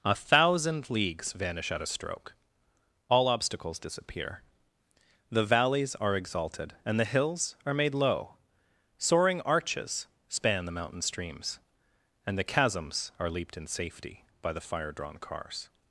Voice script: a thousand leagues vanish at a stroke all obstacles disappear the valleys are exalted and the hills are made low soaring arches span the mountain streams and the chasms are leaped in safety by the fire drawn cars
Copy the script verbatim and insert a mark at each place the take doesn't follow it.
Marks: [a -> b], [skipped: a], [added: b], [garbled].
a thousand leagues vanish at a stroke all obstacles disappear the valleys are exalted and the hills are made low soaring arches span the mountain streams and the chasms are leaped in safety by the fire drawn cars